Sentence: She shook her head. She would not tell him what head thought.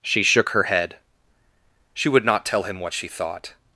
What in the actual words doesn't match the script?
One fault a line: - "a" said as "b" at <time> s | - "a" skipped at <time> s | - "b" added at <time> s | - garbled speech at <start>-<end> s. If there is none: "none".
- "head" said as "she" at 2.9 s